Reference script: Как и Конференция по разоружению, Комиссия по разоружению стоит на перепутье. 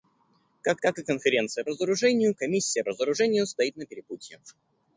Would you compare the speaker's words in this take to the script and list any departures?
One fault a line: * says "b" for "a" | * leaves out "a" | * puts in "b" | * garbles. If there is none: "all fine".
* puts in "как"
* leaves out "по"
* leaves out "по"